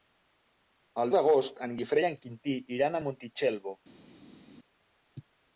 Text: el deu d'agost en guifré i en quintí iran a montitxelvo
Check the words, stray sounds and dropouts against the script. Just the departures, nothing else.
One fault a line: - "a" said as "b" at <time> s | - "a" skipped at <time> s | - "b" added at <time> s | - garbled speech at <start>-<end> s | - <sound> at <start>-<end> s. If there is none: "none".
- "deu" skipped at 1.1 s